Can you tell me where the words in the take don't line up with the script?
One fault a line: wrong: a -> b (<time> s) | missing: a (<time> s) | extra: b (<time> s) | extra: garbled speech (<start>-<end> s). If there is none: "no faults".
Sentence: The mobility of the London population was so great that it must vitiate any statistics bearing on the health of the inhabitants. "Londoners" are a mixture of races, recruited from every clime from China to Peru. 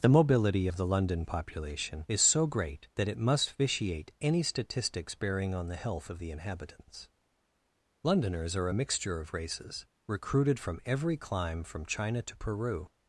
wrong: was -> is (2.1 s)